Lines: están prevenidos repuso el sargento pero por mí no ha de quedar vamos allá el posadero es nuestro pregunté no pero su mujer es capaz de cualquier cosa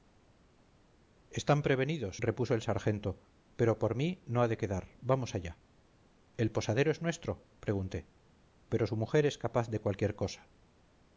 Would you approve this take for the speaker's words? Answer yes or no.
no